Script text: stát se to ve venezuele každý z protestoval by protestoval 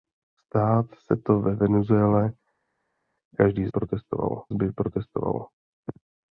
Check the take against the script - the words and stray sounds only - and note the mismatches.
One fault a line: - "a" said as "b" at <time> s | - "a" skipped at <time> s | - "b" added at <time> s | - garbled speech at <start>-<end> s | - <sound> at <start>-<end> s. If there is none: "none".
none